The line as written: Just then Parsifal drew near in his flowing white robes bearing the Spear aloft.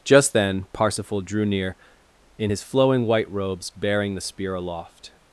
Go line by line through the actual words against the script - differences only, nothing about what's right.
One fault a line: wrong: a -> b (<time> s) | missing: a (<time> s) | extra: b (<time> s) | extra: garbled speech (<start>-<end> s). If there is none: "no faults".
no faults